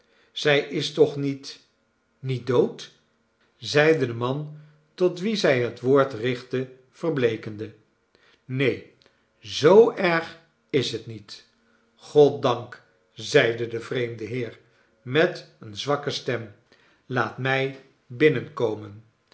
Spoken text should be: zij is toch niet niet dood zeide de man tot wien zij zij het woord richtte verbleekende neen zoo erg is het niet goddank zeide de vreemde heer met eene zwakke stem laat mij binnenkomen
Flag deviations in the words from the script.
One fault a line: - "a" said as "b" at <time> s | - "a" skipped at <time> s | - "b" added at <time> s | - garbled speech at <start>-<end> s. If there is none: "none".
- "zij" skipped at 5.6 s